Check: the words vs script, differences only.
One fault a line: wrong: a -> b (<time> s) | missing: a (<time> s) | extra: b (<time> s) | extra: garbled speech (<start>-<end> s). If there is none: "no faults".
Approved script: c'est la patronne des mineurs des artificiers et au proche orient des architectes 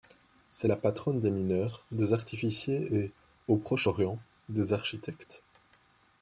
no faults